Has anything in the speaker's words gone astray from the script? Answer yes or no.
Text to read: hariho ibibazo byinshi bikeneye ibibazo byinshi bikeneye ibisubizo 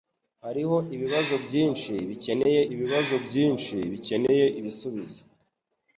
no